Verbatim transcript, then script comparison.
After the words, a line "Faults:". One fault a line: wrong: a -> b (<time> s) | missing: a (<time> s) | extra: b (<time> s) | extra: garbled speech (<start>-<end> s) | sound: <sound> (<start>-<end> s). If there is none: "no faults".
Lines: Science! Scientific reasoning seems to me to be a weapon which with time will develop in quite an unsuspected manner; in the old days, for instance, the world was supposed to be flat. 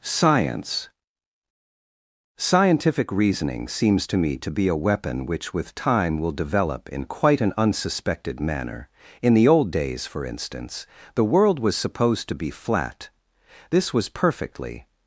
Science! Scientific reasoning seems to me to be a weapon which with time will develop in quite an unsuspected manner; in the old days, for instance, the world was supposed to be flat. This was perfectly
Faults:
extra: This was perfectly (13.7 s)